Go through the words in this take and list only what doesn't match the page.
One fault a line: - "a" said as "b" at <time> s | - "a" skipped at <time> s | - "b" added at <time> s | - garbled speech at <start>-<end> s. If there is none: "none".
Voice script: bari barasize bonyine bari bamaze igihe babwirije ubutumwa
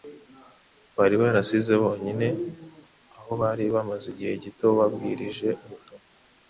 - "aho" added at 3.2 s
- "gito" added at 4.4 s